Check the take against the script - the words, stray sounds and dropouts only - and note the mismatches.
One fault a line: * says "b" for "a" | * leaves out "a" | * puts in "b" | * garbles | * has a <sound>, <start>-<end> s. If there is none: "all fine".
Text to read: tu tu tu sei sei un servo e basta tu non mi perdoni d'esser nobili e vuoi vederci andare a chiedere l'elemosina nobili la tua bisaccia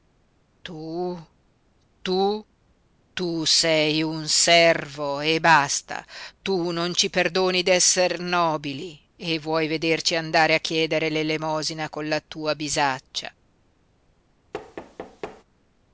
* leaves out "sei"
* says "ci" for "mi"
* says "con" for "nobili"
* has a thud, 14.5-15.4 s